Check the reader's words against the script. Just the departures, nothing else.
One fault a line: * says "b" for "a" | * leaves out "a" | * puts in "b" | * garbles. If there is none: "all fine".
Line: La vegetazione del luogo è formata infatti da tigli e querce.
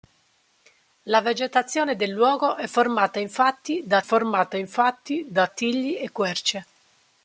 * puts in "formata infatti da"